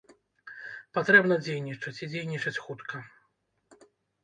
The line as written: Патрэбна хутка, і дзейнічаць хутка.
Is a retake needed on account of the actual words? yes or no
yes